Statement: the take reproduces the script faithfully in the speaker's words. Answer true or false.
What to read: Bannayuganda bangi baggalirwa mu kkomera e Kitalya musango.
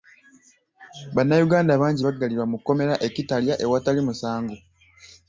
false